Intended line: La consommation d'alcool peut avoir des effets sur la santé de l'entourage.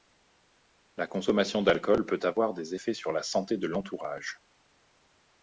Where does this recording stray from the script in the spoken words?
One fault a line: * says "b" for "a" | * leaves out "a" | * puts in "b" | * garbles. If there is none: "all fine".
all fine